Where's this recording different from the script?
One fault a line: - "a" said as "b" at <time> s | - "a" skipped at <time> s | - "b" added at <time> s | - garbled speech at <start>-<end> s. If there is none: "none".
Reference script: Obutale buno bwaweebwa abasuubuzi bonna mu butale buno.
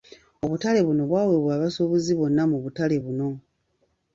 none